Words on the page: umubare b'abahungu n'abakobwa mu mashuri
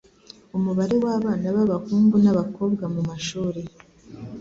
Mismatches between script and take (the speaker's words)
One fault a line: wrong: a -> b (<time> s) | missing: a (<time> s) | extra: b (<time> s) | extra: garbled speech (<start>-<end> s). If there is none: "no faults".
extra: w'abana (1.0 s)